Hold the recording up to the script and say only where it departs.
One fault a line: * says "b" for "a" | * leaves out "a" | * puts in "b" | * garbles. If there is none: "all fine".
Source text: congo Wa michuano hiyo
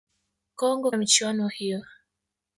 all fine